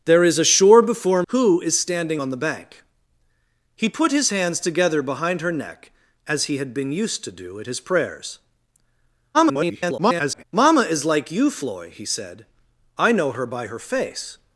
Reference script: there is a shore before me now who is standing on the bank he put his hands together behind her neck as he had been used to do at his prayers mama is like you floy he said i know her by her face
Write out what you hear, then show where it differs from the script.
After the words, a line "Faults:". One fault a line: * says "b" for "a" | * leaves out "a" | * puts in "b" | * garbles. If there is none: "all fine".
there is a shore before who is standing on the bank he put his hands together behind her neck as he had been used to do at his prayers [garbled] mama is like you floy he said i know her by her face
Faults:
* leaves out "me now"
* garbles